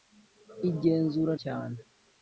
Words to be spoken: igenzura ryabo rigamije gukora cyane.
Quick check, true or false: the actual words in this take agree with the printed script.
false